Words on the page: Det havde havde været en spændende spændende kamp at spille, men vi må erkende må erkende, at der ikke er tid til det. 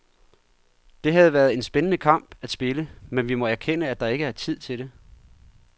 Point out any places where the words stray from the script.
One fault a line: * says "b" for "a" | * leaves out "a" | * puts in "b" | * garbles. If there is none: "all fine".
* leaves out "havde"
* leaves out "spændende"
* leaves out "må erkende"